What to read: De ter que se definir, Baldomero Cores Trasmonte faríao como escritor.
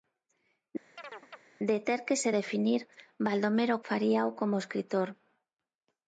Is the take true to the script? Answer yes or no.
no